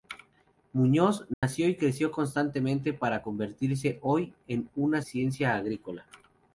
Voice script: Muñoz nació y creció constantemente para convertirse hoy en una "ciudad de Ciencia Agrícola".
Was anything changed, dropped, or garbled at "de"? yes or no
yes